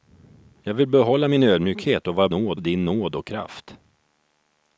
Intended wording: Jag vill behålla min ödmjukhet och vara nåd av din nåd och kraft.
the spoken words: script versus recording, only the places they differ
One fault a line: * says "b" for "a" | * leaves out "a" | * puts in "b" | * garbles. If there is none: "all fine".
all fine